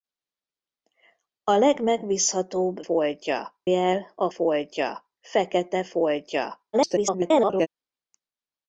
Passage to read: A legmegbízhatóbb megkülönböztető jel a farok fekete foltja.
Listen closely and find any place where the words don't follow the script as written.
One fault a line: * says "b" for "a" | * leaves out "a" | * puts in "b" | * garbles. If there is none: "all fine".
* says "foltja" for "megkülönböztető"
* says "foltja" for "farok"
* garbles